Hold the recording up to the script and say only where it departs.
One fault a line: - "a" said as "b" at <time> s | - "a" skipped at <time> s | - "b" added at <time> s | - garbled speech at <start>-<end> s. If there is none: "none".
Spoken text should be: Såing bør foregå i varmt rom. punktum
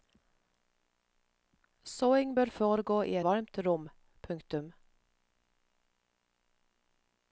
none